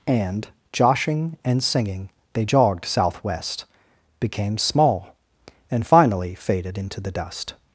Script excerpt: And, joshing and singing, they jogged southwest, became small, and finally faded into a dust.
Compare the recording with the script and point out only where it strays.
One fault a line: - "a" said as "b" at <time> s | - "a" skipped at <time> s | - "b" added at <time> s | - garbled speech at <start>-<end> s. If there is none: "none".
- "a" said as "the" at 7.0 s